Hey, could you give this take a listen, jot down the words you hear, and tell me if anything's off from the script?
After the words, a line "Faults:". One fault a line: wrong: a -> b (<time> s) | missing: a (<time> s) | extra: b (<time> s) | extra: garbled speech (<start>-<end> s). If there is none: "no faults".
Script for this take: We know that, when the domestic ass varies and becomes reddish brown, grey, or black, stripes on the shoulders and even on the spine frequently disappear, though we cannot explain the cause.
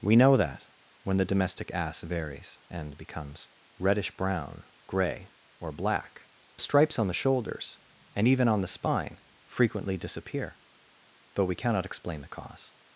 We know that, when the domestic ass varies and becomes reddish brown, grey, or black, stripes on the shoulders and even on the spine frequently disappear, though we cannot explain the cause.
Faults:
no faults